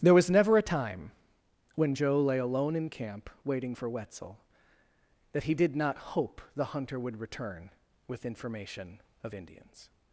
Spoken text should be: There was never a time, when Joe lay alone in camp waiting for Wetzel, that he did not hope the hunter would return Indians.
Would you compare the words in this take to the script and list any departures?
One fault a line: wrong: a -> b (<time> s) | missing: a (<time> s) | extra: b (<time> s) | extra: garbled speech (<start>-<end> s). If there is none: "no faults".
extra: with information of (8.1 s)